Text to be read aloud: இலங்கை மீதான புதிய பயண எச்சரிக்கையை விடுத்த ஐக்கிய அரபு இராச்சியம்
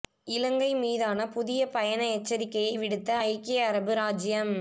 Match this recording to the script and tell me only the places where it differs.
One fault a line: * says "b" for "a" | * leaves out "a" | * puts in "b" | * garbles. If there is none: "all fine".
all fine